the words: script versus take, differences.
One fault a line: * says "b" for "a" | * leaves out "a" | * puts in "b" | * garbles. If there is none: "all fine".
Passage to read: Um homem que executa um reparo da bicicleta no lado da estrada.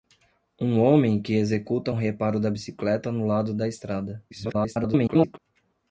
* garbles